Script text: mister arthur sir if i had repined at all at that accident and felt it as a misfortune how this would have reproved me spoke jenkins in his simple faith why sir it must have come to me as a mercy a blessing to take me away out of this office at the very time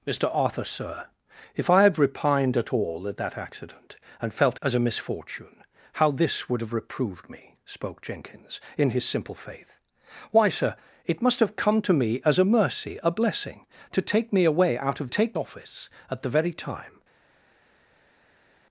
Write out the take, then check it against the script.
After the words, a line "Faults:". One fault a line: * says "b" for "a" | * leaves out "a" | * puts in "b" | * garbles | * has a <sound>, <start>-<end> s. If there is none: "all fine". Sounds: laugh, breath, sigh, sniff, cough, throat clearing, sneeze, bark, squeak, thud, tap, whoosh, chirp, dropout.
mister arthur sir if i had repined at all at that accident and felt as a misfortune how this would have reproved me spoke jenkins in his simple faith why sir it must have come to me as a mercy a blessing to take me away out of take office at the very time
Faults:
* leaves out "it"
* says "take" for "this"